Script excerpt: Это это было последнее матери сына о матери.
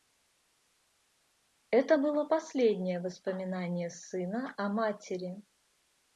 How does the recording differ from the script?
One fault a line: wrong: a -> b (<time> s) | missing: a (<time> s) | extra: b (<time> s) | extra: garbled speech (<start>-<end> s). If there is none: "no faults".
missing: это (2.0 s)
wrong: матери -> воспоминание (3.0 s)